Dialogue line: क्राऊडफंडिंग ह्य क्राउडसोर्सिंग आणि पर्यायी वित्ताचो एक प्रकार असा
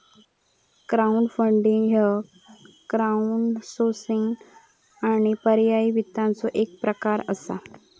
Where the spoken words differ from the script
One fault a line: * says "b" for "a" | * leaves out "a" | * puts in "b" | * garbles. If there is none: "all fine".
all fine